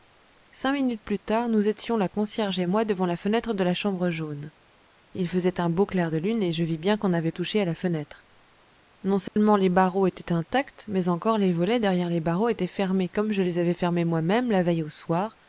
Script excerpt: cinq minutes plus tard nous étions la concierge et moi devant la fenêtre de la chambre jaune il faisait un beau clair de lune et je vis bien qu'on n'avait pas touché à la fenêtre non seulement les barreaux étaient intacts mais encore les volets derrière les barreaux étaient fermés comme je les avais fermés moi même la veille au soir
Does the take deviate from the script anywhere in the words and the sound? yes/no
yes